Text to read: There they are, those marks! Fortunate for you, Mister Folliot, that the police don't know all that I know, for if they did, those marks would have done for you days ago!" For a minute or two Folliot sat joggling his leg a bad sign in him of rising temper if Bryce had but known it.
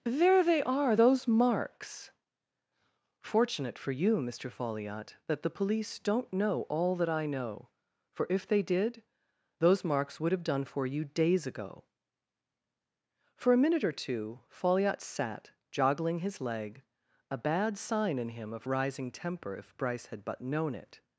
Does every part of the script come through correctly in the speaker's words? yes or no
yes